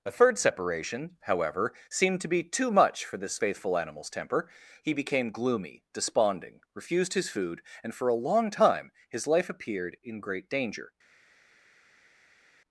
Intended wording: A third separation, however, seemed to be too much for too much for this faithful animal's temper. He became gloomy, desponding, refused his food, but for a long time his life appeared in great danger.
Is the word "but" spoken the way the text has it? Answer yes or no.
no